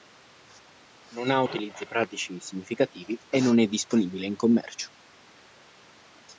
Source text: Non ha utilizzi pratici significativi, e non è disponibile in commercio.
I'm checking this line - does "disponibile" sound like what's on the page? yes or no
yes